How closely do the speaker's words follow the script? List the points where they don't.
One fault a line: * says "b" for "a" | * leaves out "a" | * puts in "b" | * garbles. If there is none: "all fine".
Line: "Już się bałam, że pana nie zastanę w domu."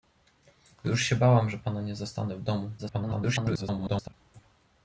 * garbles